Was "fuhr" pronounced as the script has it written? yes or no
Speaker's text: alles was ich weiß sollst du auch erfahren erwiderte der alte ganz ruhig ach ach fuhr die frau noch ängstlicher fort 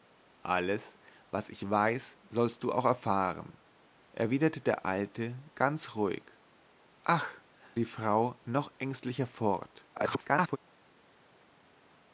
no